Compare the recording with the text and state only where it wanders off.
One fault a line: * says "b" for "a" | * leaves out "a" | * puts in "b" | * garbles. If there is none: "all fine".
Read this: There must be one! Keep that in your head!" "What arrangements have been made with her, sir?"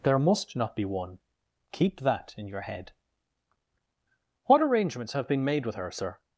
* puts in "not"